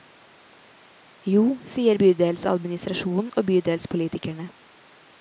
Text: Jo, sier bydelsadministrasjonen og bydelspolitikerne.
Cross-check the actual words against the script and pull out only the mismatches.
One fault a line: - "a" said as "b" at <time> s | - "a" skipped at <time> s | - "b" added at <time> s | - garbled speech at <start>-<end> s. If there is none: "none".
none